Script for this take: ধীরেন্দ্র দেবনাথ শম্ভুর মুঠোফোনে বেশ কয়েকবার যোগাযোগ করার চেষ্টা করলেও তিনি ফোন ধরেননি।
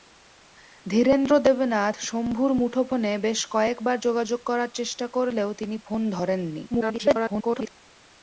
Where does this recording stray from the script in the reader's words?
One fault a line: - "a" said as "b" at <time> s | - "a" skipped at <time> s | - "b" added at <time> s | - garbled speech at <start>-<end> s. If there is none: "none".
- garbled speech at 6.7-7.7 s